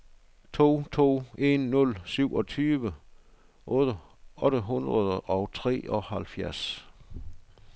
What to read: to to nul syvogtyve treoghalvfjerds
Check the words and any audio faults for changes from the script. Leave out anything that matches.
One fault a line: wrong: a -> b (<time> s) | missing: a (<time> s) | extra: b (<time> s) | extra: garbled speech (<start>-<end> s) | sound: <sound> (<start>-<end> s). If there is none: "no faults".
extra: en (1.4 s)
extra: otte hundrede og (3.7 s)